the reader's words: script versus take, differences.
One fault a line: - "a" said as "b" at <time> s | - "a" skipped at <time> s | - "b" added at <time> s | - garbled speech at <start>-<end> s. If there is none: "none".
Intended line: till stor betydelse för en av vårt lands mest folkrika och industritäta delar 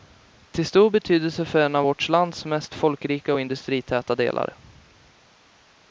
none